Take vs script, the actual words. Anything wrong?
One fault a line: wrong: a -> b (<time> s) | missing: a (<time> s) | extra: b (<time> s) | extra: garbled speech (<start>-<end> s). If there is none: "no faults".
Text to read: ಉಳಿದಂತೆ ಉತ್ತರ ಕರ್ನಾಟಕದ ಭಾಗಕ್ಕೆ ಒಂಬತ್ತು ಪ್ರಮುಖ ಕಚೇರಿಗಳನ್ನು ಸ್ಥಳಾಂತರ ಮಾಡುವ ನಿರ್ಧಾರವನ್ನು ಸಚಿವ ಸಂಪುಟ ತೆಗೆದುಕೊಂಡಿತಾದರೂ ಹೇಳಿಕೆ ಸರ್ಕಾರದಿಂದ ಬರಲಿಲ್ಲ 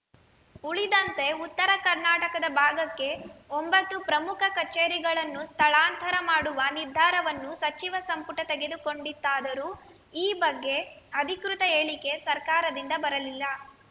extra: ಈ ಬಗ್ಗೆ ಅಧಿಕೃತ (10.2 s)